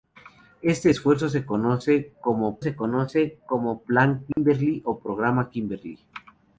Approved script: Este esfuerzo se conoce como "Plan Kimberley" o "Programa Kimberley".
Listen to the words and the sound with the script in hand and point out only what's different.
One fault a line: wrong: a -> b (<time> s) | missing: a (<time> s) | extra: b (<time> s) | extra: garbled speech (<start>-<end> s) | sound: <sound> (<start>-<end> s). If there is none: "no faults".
extra: se conoce como (2.6 s)
sound: dropout (4.3-4.4 s)